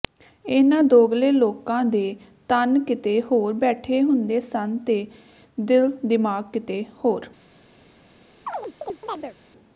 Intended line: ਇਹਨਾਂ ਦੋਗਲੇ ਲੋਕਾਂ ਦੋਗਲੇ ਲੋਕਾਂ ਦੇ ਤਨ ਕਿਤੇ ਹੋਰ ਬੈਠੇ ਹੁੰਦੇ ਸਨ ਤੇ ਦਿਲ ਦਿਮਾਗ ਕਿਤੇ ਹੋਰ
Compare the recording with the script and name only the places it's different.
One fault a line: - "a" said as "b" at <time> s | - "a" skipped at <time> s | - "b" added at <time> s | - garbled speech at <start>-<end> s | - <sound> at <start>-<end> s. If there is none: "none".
- "ਦੋਗਲੇ ਲੋਕਾਂ" skipped at 1.8 s
- chirp at 8.5-9.4 s